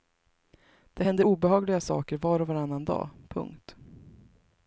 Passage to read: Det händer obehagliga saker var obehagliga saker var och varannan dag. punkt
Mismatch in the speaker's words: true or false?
true